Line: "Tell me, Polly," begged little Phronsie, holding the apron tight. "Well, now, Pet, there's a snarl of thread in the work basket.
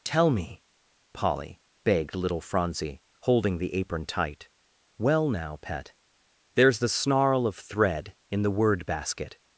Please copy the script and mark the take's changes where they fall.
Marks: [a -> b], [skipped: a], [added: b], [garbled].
"Tell me, Polly," begged little Phronsie, holding the apron tight. "Well, now, Pet, there's [a -> the] snarl of thread in the [work -> word] basket.